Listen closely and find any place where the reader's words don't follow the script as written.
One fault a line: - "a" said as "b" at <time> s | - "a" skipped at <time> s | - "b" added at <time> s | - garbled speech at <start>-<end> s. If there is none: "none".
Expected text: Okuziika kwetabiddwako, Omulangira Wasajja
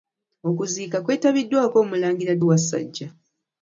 none